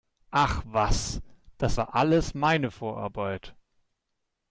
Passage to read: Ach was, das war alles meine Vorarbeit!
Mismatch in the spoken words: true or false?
false